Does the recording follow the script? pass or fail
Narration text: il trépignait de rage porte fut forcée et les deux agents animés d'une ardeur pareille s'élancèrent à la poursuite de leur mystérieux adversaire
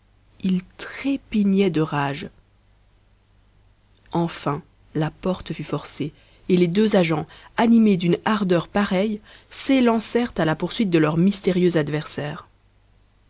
fail